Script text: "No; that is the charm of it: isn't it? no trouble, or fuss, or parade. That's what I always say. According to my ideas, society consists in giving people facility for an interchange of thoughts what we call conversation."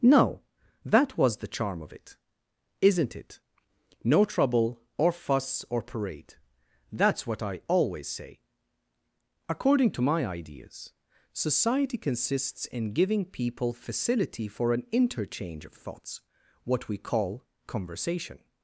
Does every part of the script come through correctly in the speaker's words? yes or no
no